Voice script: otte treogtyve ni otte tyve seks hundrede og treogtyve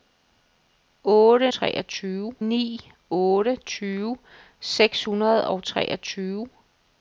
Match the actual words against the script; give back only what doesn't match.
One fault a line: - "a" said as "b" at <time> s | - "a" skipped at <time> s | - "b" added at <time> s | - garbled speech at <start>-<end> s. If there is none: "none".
none